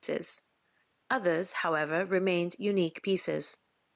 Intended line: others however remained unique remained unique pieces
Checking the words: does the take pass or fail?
fail